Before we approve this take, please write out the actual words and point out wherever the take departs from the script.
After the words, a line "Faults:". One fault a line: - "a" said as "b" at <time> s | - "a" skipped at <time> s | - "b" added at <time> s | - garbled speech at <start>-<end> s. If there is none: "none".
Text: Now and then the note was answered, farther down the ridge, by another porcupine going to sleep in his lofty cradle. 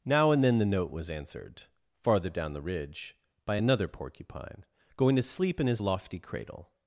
Now and then the note was answered, farther down the ridge, by another porcupine going to sleep in his lofty cradle.
Faults:
none